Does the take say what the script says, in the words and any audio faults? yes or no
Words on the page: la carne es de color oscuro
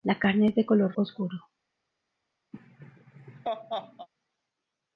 no